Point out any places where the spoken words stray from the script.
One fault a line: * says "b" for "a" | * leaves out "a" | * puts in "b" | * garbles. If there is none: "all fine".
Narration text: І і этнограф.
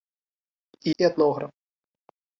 all fine